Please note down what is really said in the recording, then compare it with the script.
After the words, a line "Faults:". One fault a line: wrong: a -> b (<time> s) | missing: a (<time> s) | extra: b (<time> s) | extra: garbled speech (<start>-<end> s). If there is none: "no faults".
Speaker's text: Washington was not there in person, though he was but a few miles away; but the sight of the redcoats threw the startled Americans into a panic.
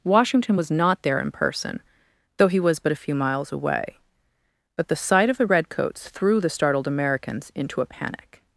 Washington was not there in person, though he was but a few miles away; but the sight of the redcoats threw the startled Americans into a panic.
Faults:
no faults